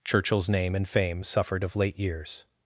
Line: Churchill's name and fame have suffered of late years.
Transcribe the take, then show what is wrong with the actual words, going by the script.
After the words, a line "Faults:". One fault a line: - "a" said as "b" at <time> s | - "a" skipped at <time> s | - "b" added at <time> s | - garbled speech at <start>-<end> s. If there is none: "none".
Churchill's name and fame suffered of late years.
Faults:
- "have" skipped at 1.2 s